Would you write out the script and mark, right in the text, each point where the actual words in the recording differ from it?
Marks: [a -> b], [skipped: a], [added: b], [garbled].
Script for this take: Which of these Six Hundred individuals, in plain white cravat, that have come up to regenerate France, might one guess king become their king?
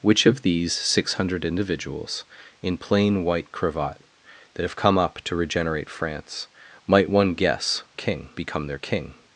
Which of these Six Hundred individuals, in plain white cravat, that have come up to regenerate France, might one guess king become their king?